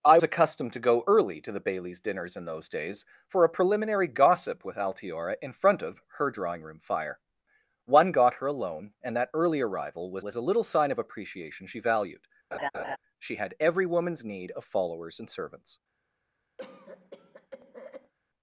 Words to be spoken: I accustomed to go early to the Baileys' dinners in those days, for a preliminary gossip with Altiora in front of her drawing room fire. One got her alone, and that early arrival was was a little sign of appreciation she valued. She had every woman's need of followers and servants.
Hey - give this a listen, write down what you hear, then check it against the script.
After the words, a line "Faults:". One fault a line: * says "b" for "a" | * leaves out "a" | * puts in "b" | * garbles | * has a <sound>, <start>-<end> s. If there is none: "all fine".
I accustomed to go early to the Baileys' dinners in those days, for a preliminary gossip with Altiora in front of her drawing room fire. One got her alone, and that early arrival was was a little sign of appreciation she valued. She had every woman's need of followers and servants.
Faults:
* has a laugh, 12.5-13.0 s
* has a cough, 16.6-18.1 s